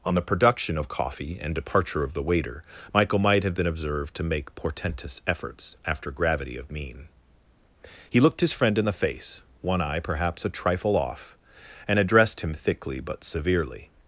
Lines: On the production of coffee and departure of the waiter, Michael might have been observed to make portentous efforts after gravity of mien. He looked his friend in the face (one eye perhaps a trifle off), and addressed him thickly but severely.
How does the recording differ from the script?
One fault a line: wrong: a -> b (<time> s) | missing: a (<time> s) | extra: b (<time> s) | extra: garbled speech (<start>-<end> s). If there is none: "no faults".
no faults